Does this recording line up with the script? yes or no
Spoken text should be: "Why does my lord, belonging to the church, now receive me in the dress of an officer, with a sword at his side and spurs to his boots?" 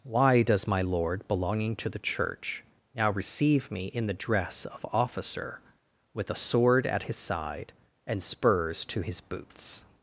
no